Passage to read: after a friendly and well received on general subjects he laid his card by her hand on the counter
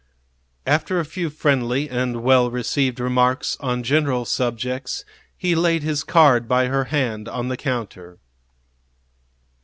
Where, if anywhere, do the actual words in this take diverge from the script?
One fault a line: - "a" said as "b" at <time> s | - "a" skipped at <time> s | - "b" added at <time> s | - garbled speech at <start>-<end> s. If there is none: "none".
- "few" added at 1.1 s
- "remarks" added at 3.0 s